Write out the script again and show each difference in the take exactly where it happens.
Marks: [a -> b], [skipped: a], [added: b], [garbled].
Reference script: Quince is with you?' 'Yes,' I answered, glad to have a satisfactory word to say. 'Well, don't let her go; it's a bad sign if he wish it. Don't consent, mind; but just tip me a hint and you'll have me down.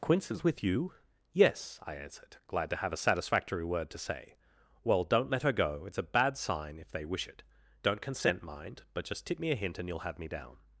Quince is with you?' 'Yes,' I answered, glad to have a satisfactory word to say. 'Well, don't let her go; it's a bad sign if [he -> they] wish it. Don't consent, mind; but just tip me a hint and you'll have me down.